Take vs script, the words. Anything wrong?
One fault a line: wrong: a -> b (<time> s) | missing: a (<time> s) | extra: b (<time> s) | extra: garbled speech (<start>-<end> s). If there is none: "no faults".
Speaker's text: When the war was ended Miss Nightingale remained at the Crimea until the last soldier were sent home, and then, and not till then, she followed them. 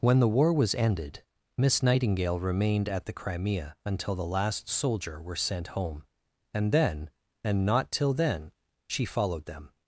no faults